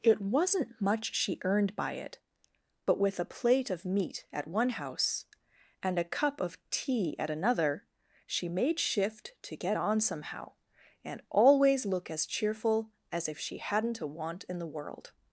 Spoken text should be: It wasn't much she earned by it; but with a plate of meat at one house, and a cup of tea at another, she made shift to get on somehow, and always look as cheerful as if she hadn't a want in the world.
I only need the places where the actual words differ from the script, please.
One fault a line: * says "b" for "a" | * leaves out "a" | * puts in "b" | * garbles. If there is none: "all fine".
all fine